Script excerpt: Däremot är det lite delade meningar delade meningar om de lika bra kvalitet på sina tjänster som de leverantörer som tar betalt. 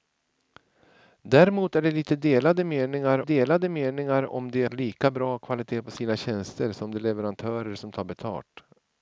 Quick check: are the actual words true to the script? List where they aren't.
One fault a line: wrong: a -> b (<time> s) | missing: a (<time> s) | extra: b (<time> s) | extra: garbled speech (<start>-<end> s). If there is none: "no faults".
no faults